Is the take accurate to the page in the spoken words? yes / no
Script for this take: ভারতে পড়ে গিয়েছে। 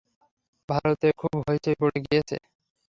no